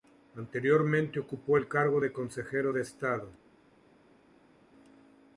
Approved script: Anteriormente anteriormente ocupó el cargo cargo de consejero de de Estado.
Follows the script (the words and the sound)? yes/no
no